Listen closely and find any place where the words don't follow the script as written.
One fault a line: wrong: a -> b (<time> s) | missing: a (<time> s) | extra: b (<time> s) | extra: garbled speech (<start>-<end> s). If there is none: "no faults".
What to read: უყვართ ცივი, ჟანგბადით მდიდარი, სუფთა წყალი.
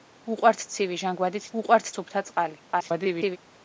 wrong: მდიდარი -> უყვართ (1.6 s)
extra: garbled speech (2.7-3.4 s)